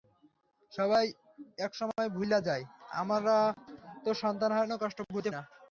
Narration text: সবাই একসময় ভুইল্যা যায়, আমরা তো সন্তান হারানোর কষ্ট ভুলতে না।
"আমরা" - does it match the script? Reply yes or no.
yes